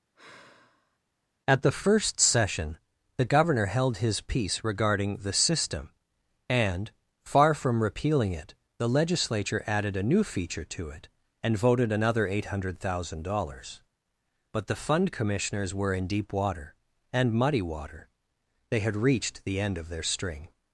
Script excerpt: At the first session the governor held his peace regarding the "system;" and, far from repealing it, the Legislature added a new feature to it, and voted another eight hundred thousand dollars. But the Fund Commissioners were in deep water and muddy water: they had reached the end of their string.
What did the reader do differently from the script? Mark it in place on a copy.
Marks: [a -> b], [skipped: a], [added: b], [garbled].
At the first session the governor held his peace regarding the "system;" and, far from repealing it, the Legislature added a new feature to it, and voted another eight hundred thousand dollars. But the Fund Commissioners were in deep water and muddy water: they had reached the end of their string.